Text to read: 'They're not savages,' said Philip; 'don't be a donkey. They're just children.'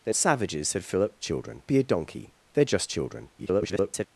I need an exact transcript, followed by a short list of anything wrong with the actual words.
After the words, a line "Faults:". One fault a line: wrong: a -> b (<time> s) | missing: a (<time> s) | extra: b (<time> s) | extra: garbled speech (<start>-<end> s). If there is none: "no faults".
'They're savages,' said Philip; 'children be a donkey. They're just children.' [garbled]
Faults:
missing: not (0.1 s)
wrong: don't -> children (1.2 s)
extra: garbled speech (3.4-4.1 s)